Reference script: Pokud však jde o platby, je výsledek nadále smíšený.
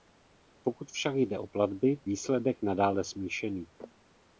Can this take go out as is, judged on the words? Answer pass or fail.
fail